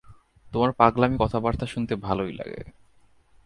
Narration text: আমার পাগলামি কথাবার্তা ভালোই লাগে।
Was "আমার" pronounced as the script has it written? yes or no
no